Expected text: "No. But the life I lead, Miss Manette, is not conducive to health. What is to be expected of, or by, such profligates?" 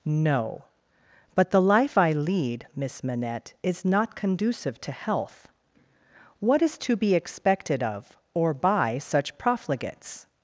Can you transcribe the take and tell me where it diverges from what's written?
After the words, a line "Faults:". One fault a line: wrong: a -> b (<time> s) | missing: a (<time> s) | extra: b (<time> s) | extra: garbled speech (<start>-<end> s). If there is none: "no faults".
"No. But the life I lead, Miss Manette, is not conducive to health. What is to be expected of, or by, such profligates?"
Faults:
no faults